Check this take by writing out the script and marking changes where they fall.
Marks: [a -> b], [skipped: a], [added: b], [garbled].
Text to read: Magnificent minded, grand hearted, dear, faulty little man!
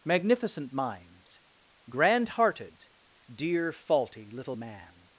Magnificent [minded, -> mind] grand hearted, dear, faulty little man!